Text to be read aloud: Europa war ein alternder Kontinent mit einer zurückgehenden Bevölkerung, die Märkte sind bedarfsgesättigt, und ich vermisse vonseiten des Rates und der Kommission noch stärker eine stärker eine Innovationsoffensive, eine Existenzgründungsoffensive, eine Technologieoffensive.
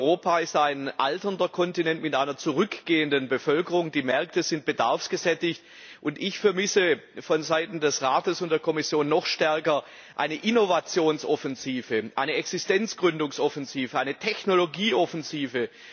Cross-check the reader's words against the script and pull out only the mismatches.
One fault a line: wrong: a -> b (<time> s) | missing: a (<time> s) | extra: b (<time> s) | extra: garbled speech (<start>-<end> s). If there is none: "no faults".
wrong: war -> ist (0.4 s)
missing: stärker eine (10.3 s)